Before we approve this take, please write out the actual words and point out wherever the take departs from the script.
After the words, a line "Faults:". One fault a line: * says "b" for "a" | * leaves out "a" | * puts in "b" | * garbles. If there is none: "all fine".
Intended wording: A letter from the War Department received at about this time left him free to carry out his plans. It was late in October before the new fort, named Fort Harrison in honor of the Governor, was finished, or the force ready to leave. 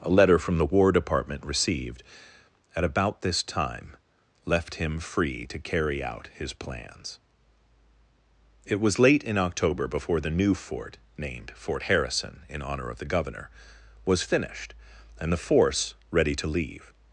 A letter from the War Department received at about this time left him free to carry out his plans. It was late in October before the new fort, named Fort Harrison in honor of the Governor, was finished, and the force ready to leave.
Faults:
* says "and" for "or"